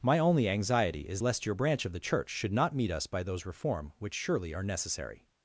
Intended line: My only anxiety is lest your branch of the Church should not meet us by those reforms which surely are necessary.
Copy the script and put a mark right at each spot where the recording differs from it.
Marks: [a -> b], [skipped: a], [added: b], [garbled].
My only anxiety is lest your branch of the Church should not meet us by those [reforms -> reform] which surely are necessary.